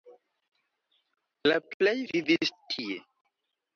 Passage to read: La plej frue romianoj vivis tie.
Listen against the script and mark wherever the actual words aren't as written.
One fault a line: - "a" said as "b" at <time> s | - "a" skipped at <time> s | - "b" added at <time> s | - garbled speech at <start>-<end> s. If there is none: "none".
- "frue romianoj" skipped at 1.9 s